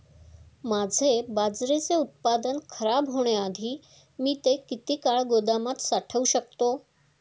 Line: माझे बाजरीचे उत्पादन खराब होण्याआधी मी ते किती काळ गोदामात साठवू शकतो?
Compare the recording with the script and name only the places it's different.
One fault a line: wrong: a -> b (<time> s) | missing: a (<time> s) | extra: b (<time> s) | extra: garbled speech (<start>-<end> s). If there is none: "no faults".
no faults